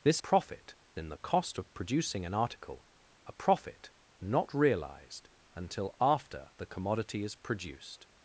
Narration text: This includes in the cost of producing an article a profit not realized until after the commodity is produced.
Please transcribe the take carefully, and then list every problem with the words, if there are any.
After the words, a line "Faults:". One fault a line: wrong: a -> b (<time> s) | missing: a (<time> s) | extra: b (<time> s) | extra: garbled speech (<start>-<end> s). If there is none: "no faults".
This profit in the cost of producing an article a profit not realized until after the commodity is produced.
Faults:
wrong: includes -> profit (0.2 s)